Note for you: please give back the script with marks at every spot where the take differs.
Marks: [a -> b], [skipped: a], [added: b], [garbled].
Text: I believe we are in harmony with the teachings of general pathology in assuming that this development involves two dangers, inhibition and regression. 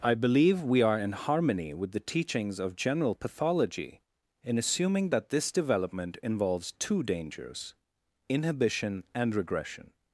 I believe we are in harmony with the teachings of general pathology in assuming that this development involves two dangers, inhibition and regression.